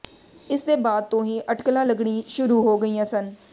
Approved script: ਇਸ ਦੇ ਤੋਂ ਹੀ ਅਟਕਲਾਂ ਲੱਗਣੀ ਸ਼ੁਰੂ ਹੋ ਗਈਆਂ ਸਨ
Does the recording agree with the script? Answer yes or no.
no